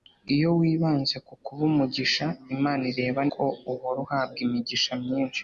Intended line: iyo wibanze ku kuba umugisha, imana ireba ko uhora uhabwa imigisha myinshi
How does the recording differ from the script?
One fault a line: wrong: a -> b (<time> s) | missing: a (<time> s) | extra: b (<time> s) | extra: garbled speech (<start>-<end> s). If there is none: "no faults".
no faults